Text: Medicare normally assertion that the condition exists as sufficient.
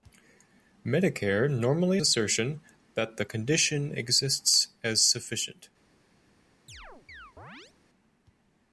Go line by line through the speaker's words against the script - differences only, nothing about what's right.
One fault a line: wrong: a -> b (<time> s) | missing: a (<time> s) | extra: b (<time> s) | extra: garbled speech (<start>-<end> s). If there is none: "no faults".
no faults